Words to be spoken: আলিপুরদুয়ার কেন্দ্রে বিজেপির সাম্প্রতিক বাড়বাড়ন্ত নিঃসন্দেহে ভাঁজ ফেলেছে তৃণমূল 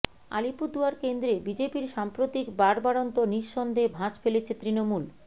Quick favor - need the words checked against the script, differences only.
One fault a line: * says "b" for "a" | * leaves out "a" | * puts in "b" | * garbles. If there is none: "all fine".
all fine